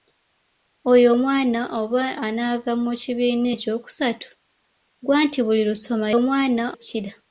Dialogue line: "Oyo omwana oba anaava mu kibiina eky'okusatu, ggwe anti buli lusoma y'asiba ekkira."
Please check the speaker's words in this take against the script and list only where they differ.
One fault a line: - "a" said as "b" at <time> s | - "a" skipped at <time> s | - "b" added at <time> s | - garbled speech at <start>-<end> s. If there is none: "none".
- "y'asiba" said as "omwana" at 6.2 s